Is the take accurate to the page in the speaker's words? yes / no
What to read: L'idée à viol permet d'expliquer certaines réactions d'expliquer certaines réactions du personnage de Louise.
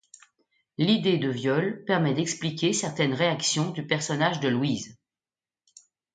no